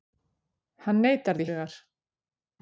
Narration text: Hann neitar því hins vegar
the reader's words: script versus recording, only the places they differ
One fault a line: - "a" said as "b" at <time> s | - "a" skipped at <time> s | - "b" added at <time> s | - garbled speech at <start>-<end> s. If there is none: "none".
- "hins" skipped at 1.5 s